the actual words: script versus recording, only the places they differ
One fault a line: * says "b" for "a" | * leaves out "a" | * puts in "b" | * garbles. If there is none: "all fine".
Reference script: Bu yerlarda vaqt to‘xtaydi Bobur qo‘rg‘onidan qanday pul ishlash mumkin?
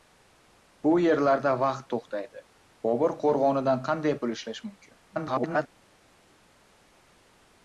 * garbles